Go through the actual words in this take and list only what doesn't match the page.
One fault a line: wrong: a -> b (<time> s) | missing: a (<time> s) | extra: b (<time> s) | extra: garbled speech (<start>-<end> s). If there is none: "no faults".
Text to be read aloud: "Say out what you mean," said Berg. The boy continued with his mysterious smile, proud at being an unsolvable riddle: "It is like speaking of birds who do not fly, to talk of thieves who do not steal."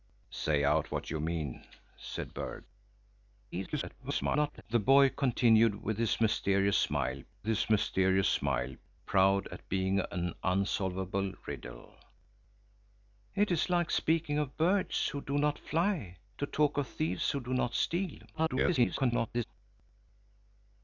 extra: garbled speech (3.5-4.6 s)
extra: his mysterious smile (7.5 s)
extra: garbled speech (18.3-19.4 s)